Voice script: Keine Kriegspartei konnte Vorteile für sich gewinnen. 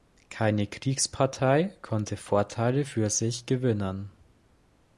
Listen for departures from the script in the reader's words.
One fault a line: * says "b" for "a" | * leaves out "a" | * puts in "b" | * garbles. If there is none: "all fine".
all fine